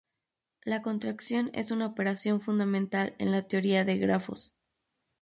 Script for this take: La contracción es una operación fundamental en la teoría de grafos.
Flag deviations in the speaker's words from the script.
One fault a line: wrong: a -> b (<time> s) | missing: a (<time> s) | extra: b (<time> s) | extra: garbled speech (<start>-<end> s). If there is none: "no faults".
no faults